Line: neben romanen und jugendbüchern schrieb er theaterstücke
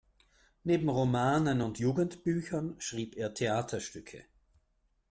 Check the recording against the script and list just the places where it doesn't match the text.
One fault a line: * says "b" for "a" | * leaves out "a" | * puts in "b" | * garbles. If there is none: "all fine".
all fine